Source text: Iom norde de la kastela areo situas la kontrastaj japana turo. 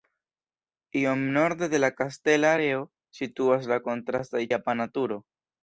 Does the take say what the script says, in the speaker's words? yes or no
yes